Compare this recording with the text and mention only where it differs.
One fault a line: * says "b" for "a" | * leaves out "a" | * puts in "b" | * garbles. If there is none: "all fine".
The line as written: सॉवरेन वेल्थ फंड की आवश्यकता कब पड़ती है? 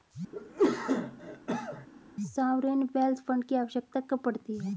all fine